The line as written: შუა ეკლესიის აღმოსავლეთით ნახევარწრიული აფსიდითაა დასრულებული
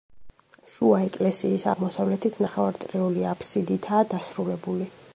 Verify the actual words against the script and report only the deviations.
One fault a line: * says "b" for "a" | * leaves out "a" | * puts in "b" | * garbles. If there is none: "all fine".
all fine